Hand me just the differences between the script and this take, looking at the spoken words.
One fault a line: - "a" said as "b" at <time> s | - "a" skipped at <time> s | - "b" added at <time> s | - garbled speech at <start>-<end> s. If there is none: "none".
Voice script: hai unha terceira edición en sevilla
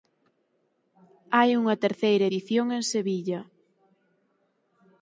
none